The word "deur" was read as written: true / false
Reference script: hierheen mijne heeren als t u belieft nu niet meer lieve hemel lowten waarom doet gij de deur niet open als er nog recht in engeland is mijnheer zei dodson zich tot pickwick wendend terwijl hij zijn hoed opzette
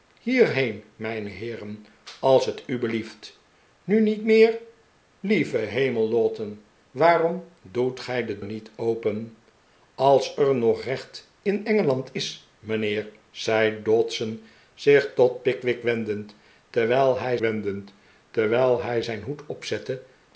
false